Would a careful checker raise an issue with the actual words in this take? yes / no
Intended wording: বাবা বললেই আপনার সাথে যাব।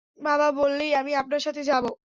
yes